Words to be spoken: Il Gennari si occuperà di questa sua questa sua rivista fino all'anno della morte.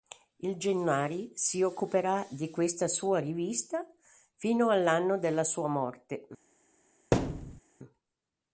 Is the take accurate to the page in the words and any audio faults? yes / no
no